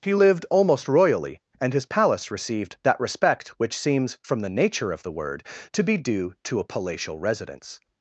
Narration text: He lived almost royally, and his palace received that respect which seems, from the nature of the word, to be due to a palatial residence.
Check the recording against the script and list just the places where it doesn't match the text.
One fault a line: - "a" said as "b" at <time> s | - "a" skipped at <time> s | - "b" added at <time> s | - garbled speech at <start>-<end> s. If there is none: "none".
none